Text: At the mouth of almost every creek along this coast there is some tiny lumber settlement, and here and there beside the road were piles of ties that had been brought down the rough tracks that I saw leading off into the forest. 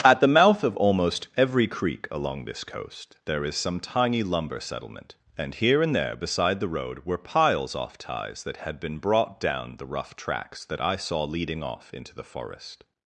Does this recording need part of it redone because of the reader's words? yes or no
yes